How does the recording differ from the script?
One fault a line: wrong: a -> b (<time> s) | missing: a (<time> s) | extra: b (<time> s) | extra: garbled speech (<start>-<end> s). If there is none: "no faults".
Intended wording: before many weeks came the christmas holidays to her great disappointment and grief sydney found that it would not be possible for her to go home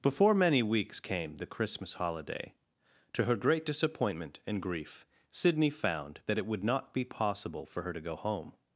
wrong: holidays -> holiday (1.9 s)